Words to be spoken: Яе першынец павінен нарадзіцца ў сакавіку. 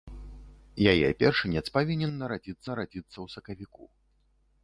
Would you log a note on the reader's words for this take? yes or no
yes